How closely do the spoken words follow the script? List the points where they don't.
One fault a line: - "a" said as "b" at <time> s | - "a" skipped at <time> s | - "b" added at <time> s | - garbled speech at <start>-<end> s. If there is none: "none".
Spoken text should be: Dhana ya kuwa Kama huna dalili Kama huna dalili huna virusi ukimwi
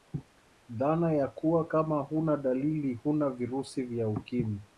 - "Kama" skipped at 2.9 s
- "dalili huna virusi" said as "virusi vya" at 3.3 s